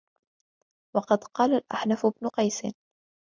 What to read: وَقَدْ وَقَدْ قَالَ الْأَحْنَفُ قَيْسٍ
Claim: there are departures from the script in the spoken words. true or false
true